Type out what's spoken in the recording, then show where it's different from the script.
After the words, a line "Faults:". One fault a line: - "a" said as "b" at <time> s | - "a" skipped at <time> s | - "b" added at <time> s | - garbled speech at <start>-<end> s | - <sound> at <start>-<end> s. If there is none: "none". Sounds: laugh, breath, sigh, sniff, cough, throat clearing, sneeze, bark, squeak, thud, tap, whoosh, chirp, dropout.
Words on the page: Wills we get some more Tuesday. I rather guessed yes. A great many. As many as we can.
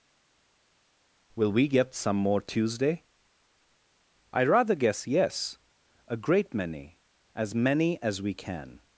Will we get some more Tuesday. I rather guess yes. A great many. As many as we can.
Faults:
- "Wills" said as "Will" at 1.3 s
- "guessed" said as "guess" at 4.7 s